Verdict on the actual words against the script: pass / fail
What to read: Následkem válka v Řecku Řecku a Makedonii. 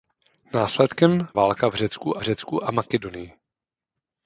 pass